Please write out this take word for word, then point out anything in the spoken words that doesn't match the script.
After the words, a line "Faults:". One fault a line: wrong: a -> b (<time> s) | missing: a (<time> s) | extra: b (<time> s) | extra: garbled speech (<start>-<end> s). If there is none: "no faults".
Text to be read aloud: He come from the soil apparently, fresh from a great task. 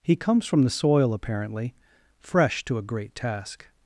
He comes from the soil apparently, fresh to a great task.
Faults:
wrong: come -> comes (0.1 s)
wrong: from -> to (2.6 s)